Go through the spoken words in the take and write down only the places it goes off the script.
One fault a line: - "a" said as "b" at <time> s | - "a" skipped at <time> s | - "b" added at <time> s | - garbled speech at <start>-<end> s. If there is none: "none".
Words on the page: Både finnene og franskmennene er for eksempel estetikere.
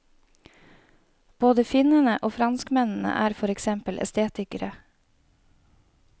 none